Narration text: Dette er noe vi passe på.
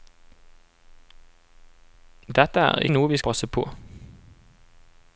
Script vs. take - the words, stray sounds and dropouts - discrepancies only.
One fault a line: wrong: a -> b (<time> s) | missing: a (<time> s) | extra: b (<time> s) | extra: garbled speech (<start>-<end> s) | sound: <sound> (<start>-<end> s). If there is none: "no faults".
no faults